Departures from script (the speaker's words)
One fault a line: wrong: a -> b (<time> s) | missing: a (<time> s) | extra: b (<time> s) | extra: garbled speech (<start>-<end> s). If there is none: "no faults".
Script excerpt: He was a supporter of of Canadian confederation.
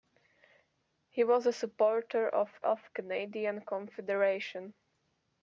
no faults